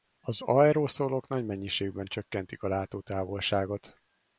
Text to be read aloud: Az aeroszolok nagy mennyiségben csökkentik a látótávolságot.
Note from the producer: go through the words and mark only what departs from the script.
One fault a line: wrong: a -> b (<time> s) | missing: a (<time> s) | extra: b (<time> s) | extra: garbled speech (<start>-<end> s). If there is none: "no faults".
no faults